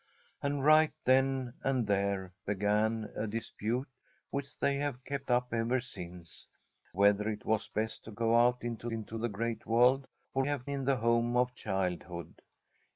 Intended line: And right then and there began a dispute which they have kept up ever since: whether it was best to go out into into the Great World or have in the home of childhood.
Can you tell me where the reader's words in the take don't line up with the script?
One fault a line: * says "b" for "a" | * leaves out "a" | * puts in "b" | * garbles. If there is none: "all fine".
all fine